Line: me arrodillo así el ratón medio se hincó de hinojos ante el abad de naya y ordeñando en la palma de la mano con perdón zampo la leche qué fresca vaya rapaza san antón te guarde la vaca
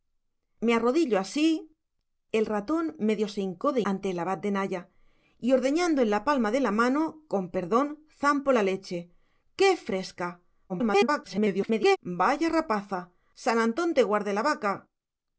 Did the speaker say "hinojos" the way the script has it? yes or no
no